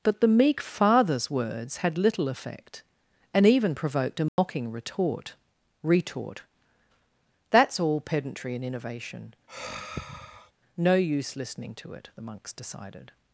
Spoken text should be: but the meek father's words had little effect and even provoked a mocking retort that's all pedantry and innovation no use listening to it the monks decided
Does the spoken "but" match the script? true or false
true